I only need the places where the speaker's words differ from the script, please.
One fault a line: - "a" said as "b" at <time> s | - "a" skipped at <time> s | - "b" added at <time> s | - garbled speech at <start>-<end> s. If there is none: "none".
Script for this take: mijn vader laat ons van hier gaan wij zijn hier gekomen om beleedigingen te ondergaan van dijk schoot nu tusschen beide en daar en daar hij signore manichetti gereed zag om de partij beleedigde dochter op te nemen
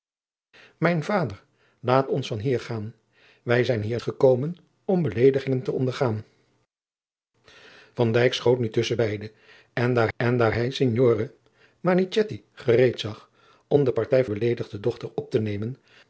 none